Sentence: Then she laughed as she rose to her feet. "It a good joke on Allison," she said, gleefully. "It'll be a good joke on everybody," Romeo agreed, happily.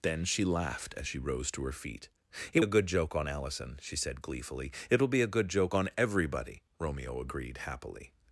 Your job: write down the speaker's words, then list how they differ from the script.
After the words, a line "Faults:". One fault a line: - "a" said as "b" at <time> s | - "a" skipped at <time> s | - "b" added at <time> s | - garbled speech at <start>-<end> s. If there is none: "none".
Then she laughed as she rose to her feet. "It a good joke on Allison," she said, gleefully. "It'll be a good joke on everybody," Romeo agreed, happily.
Faults:
none